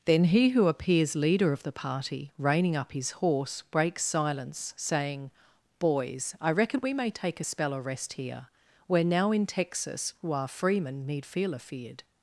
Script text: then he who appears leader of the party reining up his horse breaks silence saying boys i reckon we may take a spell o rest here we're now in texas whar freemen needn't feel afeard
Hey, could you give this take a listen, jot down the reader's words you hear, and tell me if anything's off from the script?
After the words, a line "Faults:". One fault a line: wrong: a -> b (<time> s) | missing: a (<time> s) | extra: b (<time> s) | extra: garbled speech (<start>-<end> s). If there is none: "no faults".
then he who appears leader of the party reining up his horse breaks silence saying boys i reckon we may take a spell o rest here we're now in texas whar freemen need feel afeard
Faults:
wrong: needn't -> need (11.0 s)